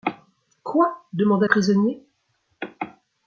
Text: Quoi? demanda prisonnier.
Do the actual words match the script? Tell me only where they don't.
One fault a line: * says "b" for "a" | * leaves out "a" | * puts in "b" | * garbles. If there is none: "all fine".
all fine